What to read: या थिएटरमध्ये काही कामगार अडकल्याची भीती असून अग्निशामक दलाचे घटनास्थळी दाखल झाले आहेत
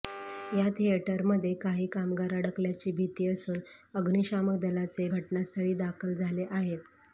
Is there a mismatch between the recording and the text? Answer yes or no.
no